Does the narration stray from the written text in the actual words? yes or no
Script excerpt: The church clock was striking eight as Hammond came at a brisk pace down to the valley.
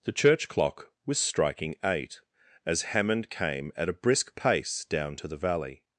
no